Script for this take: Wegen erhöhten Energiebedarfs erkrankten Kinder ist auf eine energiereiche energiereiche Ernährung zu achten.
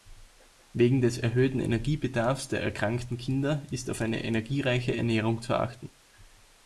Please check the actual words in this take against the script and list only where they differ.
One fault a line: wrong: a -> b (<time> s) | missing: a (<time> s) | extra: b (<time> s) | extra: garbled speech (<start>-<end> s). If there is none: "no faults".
extra: des (1.0 s)
extra: der (2.5 s)
missing: energiereiche (5.0 s)